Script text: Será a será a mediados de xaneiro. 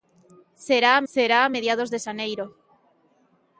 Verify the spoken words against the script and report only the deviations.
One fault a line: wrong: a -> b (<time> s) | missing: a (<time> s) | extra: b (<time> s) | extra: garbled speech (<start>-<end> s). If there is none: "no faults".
no faults